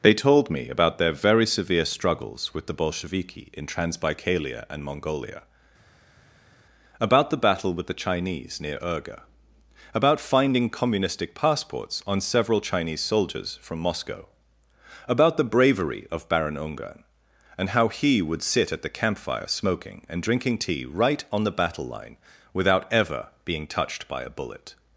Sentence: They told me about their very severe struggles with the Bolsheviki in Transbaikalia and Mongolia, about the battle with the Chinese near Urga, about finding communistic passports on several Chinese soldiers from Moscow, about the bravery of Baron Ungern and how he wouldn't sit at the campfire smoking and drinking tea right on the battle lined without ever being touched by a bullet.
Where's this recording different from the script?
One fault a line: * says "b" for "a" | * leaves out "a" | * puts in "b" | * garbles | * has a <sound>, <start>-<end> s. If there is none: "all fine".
* says "would" for "wouldn't"
* says "line" for "lined"